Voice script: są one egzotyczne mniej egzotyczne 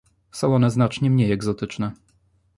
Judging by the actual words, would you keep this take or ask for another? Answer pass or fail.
fail